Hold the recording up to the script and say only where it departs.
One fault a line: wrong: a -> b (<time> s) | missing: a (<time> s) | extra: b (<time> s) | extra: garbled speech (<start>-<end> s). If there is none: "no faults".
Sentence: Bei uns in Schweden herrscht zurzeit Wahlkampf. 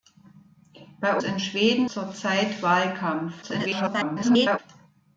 missing: uns (1.2 s)
missing: herrscht (1.9 s)
extra: garbled speech (3.4-4.6 s)